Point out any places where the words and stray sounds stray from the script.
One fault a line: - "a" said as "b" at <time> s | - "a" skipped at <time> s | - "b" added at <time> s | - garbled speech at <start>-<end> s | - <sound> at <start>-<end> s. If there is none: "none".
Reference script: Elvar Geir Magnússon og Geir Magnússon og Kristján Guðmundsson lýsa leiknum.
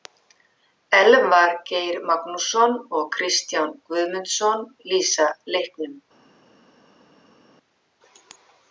- "Geir Magnússon og" skipped at 3.1 s